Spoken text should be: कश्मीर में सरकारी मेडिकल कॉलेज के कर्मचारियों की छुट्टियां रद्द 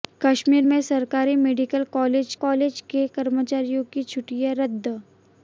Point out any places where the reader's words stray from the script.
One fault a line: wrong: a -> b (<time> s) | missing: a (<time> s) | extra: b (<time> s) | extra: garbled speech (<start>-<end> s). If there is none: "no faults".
extra: कॉलेज (2.4 s)